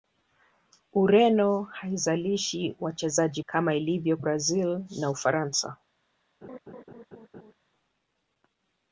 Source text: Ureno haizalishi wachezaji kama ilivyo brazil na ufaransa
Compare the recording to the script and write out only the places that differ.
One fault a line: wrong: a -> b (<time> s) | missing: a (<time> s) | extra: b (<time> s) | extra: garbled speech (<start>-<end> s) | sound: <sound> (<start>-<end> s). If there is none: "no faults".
sound: laugh (6.4-7.5 s)